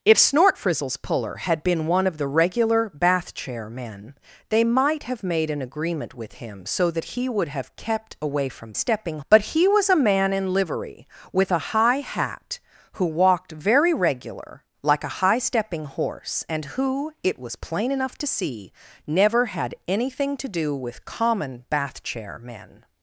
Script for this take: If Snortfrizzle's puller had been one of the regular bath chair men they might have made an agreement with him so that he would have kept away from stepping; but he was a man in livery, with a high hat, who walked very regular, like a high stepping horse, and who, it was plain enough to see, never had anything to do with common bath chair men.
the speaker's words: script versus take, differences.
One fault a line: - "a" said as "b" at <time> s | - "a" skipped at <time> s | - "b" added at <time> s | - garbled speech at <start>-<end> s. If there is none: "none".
none